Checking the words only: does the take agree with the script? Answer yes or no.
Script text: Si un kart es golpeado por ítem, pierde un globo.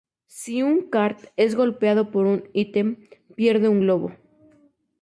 no